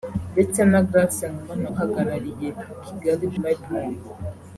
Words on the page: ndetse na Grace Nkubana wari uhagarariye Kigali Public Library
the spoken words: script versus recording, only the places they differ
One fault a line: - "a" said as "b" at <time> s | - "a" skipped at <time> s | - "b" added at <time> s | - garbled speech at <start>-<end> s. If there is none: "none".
- "wari" skipped at 1.7 s
- "Public" skipped at 3.3 s